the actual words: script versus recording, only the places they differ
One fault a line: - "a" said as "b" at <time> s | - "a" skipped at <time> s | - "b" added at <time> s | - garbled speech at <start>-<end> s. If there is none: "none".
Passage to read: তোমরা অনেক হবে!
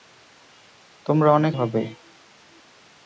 none